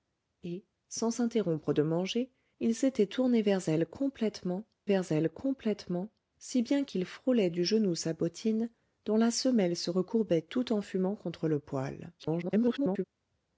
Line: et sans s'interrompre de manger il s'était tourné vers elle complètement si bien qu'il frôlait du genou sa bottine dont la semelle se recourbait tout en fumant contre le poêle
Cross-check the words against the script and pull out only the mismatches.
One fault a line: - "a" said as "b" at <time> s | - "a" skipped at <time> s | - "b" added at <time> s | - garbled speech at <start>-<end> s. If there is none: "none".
- "vers elle complètement" added at 4.9 s
- garbled speech at 12.2-13.0 s